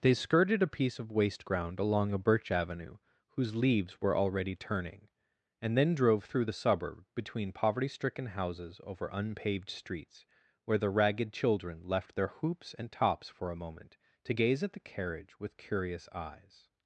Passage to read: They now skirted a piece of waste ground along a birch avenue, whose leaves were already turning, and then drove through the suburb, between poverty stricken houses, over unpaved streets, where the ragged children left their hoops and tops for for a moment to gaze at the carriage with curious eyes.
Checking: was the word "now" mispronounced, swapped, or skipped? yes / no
yes